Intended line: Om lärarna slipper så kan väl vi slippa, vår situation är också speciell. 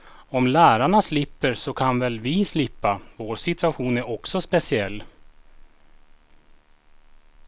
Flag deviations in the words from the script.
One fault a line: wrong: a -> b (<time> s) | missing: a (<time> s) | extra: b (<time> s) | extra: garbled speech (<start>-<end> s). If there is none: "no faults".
no faults